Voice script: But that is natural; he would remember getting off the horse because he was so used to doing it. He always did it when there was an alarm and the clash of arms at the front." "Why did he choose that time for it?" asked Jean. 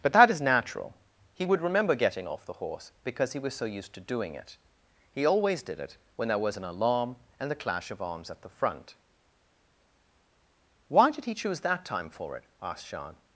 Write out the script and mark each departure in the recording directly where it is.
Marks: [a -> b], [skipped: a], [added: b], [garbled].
But that is natural; he would remember getting off the horse because he was so used to doing it. He always did it when there was an alarm and the clash of arms at the front." "Why did he choose that time for it?" asked Jean.